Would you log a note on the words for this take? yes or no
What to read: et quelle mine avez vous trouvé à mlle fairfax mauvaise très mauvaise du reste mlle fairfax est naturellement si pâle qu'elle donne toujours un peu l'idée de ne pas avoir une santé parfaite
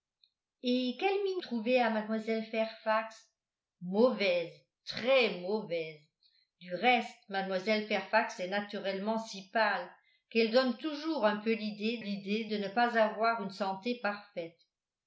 yes